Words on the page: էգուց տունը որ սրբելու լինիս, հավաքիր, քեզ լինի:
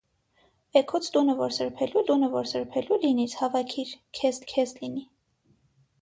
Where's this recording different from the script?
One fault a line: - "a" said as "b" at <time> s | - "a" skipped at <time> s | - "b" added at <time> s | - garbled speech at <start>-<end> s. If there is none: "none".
- "տունը որ սրբելու" added at 2.1 s
- "քեզ" added at 4.5 s